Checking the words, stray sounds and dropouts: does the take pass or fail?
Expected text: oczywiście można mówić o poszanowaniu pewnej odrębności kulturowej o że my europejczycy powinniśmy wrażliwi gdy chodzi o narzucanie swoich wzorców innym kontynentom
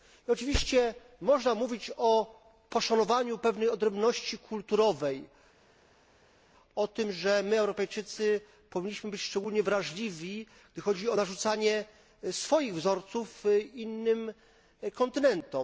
fail